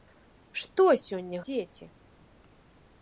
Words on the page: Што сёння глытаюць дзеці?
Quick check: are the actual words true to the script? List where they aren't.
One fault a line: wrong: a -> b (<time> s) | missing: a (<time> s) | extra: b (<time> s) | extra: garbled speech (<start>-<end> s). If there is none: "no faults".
missing: глытаюць (1.4 s)